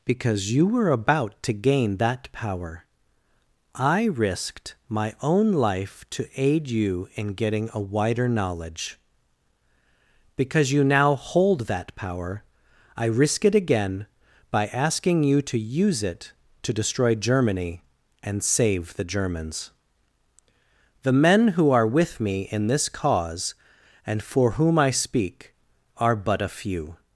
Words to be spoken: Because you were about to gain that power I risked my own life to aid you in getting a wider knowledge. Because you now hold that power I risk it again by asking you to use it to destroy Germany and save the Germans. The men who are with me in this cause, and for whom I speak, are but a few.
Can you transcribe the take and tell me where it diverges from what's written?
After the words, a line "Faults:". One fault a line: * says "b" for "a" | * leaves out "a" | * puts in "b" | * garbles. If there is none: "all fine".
Because you were about to gain that power I risked my own life to aid you in getting a wider knowledge. Because you now hold that power I risk it again by asking you to use it to destroy Germany and save the Germans. The men who are with me in this cause, and for whom I speak, are but a few.
Faults:
all fine